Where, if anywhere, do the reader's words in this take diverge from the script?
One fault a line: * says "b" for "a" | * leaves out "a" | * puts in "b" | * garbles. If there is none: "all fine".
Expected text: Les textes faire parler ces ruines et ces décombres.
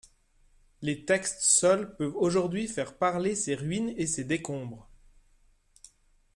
* puts in "seuls peuvent aujourd'hui"